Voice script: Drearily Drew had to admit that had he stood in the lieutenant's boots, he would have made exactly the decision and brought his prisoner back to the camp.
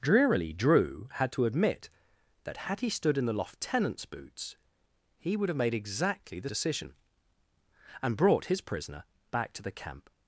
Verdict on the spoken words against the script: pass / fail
pass